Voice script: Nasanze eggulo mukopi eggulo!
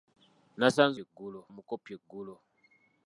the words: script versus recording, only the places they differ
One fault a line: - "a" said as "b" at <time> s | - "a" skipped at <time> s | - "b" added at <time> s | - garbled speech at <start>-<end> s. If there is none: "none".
none